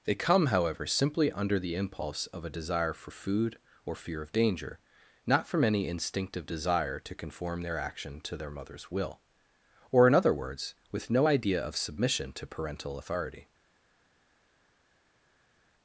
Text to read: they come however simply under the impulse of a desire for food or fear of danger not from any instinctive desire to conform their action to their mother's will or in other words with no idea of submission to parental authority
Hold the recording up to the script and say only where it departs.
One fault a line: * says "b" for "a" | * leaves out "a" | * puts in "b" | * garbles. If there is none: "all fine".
all fine